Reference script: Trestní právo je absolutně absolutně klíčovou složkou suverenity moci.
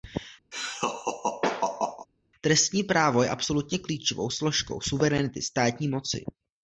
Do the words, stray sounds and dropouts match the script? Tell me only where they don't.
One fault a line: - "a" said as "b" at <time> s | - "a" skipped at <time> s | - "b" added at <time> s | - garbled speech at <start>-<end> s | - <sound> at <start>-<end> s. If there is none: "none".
- laugh at 0.5-2.1 s
- "absolutně" skipped at 3.8 s
- "státní" added at 5.4 s